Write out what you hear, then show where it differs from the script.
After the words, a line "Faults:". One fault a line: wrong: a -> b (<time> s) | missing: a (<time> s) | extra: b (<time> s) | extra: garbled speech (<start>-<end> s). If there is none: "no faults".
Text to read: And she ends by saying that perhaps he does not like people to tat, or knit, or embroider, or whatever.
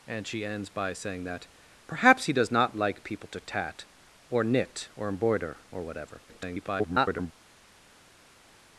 And she ends by saying that perhaps he does not like people to tat, or knit, or embroider, or whatever. [garbled]
Faults:
extra: garbled speech (6.3-7.3 s)